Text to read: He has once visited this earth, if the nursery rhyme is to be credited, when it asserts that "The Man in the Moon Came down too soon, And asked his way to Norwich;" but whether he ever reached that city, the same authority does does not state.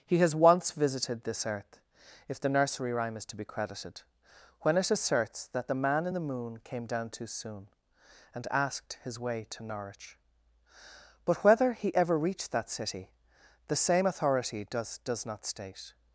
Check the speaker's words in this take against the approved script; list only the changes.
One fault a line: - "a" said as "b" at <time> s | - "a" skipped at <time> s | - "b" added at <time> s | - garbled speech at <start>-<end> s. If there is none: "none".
none